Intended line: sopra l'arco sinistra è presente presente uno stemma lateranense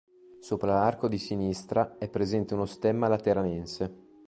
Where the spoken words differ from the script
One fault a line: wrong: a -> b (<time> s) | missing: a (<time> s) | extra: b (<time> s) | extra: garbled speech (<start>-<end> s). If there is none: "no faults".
extra: di (1.1 s)
missing: presente (2.5 s)